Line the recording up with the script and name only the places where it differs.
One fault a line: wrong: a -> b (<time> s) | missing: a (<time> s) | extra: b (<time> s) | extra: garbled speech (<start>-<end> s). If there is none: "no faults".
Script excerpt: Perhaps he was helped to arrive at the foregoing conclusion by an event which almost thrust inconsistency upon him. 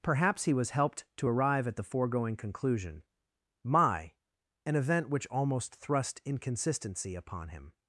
wrong: by -> my (3.6 s)